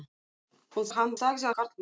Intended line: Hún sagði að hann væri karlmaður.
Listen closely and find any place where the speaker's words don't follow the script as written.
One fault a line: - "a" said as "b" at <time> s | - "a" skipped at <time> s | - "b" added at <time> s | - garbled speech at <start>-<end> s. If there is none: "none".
- "sagði" skipped at 0.9 s
- "væri" said as "sagði" at 1.2 s